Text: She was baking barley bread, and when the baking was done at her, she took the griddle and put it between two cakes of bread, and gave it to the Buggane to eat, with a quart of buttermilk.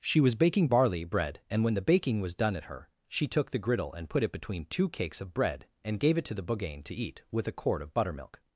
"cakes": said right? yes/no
yes